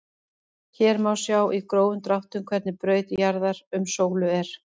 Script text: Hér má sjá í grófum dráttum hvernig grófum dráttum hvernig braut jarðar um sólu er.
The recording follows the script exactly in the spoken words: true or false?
false